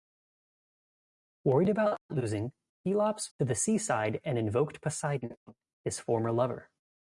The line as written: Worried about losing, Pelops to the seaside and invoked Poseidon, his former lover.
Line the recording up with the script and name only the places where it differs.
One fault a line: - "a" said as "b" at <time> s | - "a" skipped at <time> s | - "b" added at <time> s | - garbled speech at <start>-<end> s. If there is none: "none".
none